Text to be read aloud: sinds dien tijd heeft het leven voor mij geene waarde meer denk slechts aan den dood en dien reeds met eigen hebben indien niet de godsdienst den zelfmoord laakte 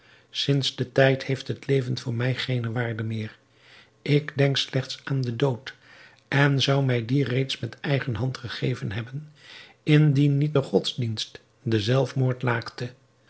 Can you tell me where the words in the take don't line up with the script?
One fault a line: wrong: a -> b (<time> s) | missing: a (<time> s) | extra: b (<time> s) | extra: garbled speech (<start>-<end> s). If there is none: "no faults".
extra: ik (4.0 s)
extra: zou mij (6.6 s)
extra: hand gegeven (8.2 s)